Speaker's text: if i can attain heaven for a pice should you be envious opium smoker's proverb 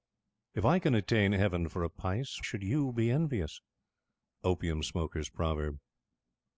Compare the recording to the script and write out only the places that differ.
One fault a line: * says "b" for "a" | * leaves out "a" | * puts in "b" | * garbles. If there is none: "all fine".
all fine